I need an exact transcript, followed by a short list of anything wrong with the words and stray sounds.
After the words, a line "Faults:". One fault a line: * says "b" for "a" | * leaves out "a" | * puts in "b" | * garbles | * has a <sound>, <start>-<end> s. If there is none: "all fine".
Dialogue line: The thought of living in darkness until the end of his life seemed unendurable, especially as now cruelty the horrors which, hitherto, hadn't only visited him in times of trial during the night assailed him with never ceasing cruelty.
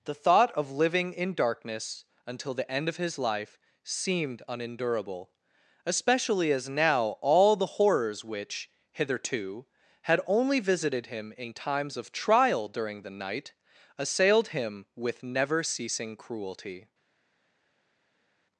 The thought of living in darkness until the end of his life seemed unendurable, especially as now all the horrors which, hitherto, had only visited him in times of trial during the night assailed him with never ceasing cruelty.
Faults:
* says "all" for "cruelty"
* says "had" for "hadn't"